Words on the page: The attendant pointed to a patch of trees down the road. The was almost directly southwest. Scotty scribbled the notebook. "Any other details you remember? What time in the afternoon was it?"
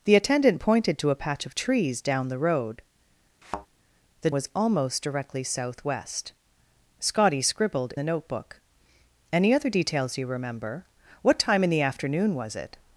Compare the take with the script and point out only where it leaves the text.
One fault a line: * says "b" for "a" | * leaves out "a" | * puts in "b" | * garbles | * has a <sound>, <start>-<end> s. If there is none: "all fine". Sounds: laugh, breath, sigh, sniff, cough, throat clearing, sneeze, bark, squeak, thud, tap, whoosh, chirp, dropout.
* has a thud, 3.4-3.7 s